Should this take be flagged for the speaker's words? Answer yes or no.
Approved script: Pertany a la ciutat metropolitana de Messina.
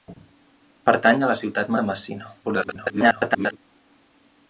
yes